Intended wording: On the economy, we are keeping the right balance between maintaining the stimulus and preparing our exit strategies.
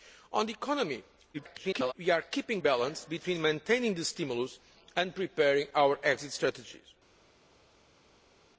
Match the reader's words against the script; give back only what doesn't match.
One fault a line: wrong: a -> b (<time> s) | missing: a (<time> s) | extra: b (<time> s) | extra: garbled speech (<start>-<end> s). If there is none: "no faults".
extra: garbled speech (1.3-1.9 s)
missing: the right (2.6 s)